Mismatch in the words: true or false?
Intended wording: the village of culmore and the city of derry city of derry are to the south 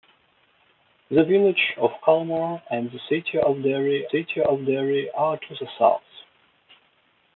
false